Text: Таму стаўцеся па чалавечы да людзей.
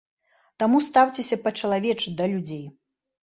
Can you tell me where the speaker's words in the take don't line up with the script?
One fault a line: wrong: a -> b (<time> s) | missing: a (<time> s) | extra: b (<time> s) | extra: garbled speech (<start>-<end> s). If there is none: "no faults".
no faults